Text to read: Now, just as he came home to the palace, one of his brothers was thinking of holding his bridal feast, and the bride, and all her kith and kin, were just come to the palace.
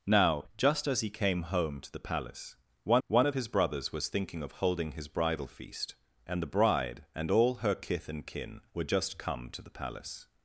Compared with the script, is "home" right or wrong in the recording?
right